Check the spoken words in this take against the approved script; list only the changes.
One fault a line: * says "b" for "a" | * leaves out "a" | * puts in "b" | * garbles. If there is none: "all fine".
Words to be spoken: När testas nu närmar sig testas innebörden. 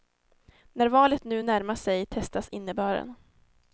* says "valet" for "testas"